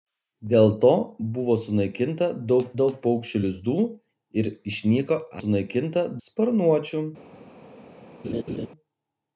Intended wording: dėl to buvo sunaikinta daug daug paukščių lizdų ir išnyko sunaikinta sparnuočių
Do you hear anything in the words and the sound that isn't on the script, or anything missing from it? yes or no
yes